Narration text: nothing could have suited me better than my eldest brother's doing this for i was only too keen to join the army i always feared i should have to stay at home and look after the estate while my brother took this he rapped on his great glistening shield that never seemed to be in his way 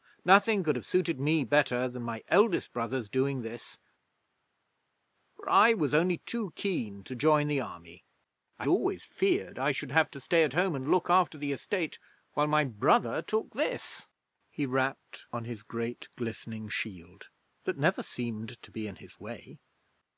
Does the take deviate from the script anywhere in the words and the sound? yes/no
no